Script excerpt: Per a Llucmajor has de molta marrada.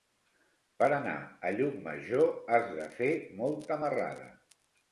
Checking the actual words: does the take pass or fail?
fail